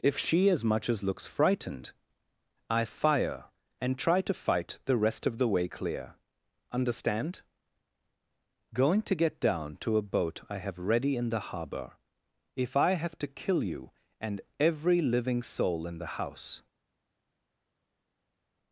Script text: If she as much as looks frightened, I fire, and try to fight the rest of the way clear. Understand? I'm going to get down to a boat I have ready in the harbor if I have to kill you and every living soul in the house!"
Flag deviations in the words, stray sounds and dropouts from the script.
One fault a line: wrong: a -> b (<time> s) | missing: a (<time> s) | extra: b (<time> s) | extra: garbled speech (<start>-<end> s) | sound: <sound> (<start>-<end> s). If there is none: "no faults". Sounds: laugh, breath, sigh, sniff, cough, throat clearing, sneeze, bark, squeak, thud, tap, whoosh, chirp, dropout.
missing: I'm (7.4 s)